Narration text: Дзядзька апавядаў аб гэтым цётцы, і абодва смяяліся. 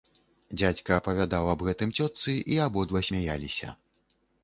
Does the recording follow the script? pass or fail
pass